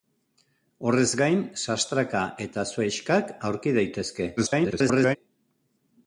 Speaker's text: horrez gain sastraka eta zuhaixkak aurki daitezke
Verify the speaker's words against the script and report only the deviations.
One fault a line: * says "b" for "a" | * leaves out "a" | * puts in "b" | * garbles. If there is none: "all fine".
* garbles